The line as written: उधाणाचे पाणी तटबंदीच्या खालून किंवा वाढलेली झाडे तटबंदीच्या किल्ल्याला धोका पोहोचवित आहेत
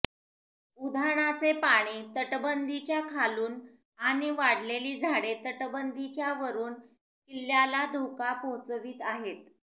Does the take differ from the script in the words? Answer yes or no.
yes